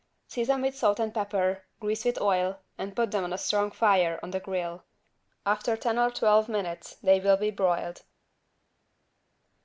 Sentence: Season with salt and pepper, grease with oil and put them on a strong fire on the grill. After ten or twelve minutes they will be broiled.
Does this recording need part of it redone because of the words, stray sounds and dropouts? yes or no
no